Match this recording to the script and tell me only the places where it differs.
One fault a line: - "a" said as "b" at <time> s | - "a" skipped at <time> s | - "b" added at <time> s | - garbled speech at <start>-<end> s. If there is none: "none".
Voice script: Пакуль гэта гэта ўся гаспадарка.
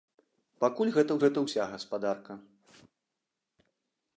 none